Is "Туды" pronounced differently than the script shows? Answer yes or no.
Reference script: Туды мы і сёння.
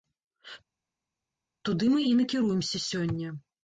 no